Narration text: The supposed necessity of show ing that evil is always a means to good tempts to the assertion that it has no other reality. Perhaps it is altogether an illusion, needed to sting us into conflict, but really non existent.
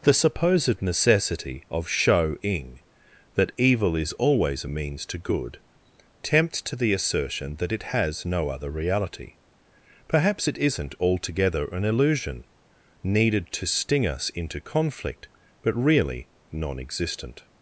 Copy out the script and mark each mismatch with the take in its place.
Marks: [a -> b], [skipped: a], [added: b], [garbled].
The supposed necessity of show ing that evil is always a means to good tempts to the assertion that it has no other reality. Perhaps it [is -> isn't] altogether an illusion, needed to sting us into conflict, but really non existent.